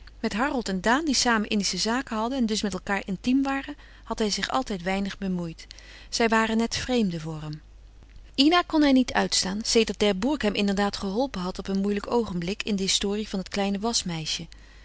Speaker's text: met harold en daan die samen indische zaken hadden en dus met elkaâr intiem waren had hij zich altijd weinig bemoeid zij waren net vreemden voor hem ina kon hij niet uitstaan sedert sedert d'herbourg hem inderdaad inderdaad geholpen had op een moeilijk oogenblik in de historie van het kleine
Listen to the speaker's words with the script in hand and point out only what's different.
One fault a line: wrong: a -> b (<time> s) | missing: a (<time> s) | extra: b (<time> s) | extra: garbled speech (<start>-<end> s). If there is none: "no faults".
missing: sedert (10.0 s)
missing: inderdaad (11.0 s)